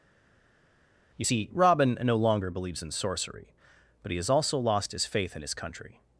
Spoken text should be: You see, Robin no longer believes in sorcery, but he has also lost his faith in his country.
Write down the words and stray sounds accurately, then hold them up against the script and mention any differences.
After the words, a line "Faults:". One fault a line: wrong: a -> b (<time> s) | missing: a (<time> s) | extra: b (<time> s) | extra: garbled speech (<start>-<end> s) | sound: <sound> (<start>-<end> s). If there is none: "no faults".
You see, Robin no longer believes in sorcery, but he has also lost his faith in his country.
Faults:
no faults